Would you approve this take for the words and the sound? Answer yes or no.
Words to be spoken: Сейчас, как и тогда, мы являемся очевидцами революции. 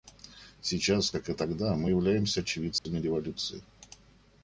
no